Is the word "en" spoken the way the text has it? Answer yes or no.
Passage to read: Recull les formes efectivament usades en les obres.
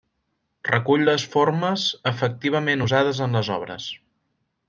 yes